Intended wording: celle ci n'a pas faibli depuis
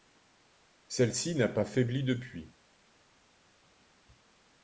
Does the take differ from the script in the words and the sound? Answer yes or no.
no